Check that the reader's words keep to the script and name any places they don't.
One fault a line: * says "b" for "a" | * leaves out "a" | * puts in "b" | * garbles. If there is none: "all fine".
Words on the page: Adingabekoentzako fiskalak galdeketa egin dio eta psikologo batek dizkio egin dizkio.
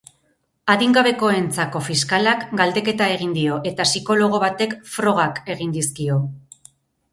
* says "frogak" for "dizkio"